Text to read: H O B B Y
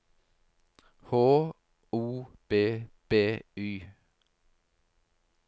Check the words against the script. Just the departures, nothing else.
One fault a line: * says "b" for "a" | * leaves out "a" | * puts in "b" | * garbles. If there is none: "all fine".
all fine